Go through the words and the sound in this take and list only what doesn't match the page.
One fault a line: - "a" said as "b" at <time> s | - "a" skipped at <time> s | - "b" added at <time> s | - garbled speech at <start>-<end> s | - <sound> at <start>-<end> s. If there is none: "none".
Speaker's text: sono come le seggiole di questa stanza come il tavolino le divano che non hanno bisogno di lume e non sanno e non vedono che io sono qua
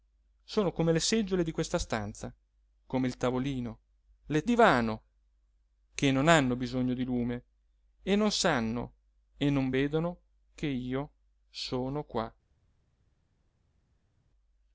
none